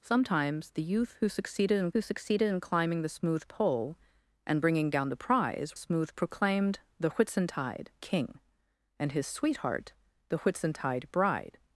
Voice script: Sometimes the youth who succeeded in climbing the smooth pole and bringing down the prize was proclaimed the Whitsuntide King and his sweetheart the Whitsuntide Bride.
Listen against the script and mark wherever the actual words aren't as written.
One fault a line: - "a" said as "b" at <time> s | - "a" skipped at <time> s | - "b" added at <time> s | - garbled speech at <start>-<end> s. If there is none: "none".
- "who succeeded in" added at 1.9 s
- "was" said as "smooth" at 5.8 s